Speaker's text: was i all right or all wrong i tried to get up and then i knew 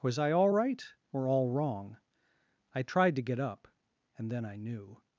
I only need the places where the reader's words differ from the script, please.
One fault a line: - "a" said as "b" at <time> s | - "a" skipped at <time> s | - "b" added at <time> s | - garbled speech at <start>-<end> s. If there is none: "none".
none